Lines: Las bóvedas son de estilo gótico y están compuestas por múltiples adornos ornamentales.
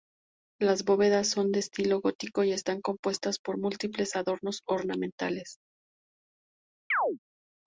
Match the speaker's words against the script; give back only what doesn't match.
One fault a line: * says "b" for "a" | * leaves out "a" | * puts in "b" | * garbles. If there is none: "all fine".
all fine